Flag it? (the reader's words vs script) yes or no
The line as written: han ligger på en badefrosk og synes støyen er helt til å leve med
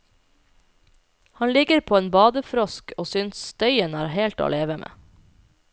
no